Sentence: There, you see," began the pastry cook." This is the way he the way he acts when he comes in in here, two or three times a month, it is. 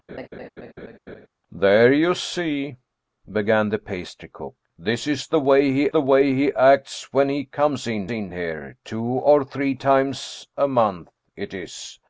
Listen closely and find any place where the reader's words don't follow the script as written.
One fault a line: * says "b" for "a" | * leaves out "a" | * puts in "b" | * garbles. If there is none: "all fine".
all fine